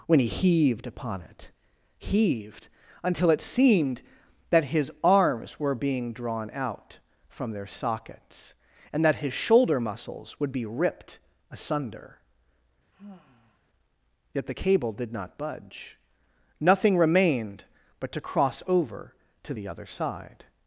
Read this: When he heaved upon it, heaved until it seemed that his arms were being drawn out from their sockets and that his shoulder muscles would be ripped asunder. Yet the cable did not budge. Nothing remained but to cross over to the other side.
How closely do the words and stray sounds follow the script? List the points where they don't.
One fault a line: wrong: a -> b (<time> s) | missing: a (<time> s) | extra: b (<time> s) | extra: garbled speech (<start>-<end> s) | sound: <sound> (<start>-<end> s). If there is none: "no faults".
sound: sigh (12.9-13.6 s)